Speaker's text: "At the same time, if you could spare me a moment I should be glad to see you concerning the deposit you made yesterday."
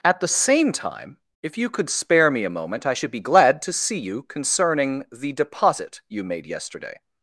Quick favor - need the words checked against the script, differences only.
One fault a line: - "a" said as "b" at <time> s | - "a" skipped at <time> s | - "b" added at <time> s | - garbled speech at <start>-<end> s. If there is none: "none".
none